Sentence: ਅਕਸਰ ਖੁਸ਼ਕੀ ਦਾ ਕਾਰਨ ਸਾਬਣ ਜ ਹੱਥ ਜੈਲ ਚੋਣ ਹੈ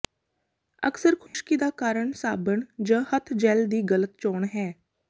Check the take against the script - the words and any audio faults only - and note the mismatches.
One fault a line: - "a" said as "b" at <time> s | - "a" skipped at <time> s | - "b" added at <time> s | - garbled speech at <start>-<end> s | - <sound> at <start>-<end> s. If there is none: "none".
- dropout at 1.3-1.3 s
- "ਦੀ ਗਲਤ" added at 3.7 s